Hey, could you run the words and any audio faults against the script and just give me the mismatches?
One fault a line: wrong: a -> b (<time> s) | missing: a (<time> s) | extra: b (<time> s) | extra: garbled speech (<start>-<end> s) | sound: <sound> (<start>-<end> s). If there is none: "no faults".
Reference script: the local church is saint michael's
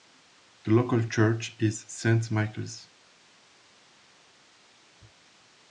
no faults